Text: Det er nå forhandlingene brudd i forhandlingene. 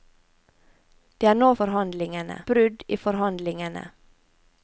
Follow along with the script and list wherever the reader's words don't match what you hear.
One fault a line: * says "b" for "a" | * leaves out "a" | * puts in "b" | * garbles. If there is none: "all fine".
all fine